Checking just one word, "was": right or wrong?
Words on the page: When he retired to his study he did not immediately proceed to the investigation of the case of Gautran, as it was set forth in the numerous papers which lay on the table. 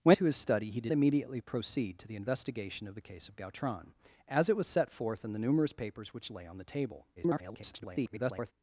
right